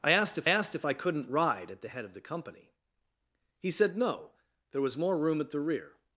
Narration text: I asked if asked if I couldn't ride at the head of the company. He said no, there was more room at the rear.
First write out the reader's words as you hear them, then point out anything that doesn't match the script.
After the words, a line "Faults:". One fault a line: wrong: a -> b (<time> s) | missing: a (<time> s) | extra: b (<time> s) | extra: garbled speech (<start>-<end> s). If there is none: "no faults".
I asked if asked if I couldn't ride at the head of the company. He said no, there was more room at the rear.
Faults:
no faults